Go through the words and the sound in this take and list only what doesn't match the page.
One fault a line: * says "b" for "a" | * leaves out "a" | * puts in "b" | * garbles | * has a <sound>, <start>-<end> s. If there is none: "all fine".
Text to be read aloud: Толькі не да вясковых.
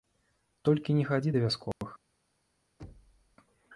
* puts in "хадзі"
* has a dropout, 1.7-1.8 s
* has a thud, 2.8-3.4 s